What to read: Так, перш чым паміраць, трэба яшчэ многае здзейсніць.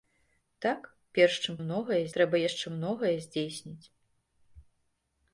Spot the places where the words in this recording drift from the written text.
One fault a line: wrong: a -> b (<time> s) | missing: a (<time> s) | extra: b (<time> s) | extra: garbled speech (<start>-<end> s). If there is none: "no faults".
wrong: паміраць -> многае (1.6 s)